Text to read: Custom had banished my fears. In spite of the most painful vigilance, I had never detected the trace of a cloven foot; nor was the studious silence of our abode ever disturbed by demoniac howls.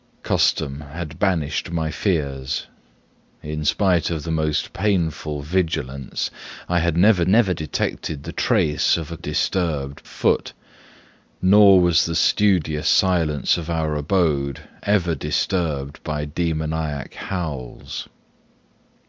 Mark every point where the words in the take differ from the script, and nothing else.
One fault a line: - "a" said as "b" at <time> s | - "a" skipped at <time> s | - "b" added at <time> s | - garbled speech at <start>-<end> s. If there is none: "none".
- "never" added at 7.3 s
- "cloven" said as "disturbed" at 9.2 s